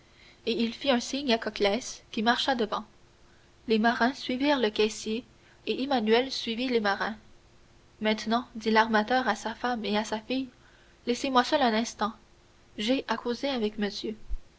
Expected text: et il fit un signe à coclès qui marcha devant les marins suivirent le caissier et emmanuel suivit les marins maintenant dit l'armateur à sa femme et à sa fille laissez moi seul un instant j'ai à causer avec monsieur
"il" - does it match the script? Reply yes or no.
yes